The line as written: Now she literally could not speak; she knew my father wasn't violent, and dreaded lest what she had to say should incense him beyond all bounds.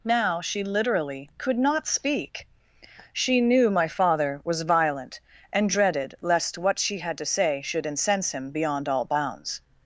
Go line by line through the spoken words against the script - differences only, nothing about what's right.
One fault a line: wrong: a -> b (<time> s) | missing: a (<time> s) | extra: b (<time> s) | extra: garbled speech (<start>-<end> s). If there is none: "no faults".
wrong: wasn't -> was (4.4 s)